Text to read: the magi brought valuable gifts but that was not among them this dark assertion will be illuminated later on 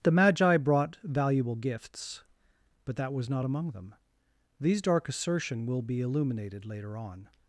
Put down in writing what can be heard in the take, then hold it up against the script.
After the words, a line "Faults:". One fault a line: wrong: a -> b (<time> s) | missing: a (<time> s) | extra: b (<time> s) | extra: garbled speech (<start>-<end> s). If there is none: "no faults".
the magi brought valuable gifts but that was not among them these dark assertion will be illuminated later on
Faults:
wrong: this -> these (4.6 s)